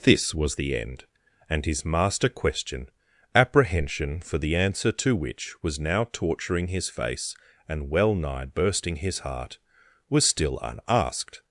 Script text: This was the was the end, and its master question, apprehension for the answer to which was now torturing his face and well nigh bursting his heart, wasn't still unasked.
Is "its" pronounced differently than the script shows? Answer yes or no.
yes